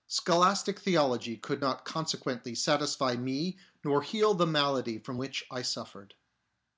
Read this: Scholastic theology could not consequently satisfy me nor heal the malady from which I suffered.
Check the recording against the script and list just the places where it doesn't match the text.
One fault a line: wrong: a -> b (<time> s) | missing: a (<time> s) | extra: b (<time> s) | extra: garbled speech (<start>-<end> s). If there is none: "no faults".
no faults